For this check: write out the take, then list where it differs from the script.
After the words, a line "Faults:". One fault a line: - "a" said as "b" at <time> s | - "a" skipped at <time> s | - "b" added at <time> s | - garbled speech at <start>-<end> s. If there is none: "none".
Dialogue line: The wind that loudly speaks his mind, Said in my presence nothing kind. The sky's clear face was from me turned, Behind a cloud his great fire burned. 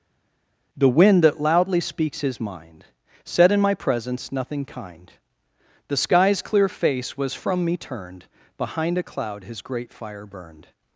The wind that loudly speaks his mind, Said in my presence nothing kind. The sky's clear face was from me turned, Behind a cloud his great fire burned.
Faults:
none